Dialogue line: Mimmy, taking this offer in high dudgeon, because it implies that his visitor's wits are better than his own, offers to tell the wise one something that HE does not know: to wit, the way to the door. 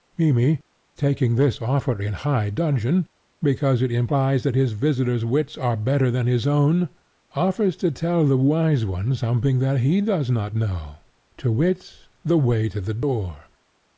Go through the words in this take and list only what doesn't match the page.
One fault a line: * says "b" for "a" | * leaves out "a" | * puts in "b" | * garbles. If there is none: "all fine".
all fine